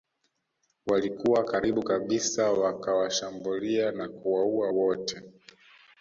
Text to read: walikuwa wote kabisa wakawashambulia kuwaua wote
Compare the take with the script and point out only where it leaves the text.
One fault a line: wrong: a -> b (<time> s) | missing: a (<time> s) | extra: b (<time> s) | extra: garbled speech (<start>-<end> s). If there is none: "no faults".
wrong: wote -> karibu (1.4 s)
extra: na (3.9 s)